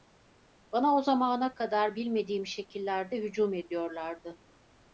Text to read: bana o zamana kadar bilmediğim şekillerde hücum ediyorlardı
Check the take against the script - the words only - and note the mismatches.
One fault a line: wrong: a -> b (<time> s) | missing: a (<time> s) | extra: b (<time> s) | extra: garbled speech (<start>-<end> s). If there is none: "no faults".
no faults